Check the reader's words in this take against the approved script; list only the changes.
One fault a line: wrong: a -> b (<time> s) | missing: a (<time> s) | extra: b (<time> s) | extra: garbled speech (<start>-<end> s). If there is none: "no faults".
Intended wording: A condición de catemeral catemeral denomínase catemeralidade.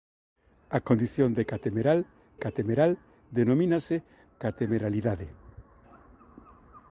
no faults